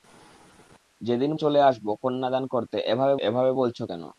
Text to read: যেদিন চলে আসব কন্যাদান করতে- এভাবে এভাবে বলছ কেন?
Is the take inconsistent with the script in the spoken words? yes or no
no